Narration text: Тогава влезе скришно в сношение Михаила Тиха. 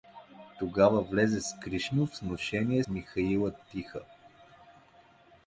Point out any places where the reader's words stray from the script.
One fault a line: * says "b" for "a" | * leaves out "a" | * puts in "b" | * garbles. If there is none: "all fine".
all fine